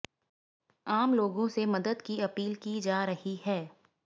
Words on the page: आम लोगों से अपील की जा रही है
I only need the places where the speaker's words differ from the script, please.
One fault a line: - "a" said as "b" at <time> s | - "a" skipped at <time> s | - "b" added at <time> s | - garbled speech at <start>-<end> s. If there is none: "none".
- "मदद की" added at 1.6 s